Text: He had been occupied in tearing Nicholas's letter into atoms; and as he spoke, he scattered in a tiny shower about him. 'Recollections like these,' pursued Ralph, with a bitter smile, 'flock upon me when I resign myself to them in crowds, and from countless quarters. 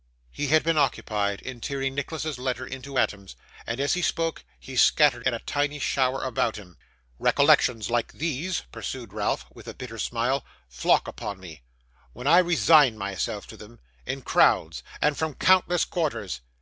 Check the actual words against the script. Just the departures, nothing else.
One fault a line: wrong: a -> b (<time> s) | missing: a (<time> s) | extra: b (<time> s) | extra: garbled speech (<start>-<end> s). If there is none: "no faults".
no faults